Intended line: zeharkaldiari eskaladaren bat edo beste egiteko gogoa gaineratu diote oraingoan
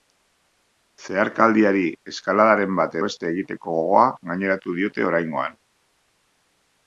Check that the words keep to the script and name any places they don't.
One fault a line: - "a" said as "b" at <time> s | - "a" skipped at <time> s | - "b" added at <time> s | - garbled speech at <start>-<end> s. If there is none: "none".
- "edo" skipped at 3.0 s